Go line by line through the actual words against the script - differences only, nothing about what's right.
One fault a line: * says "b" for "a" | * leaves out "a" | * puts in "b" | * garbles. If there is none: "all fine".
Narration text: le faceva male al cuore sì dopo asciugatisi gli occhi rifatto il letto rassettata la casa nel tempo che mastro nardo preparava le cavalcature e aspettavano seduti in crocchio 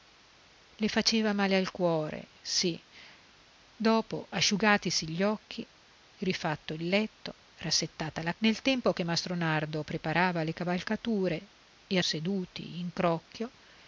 * leaves out "casa"
* leaves out "aspettavano"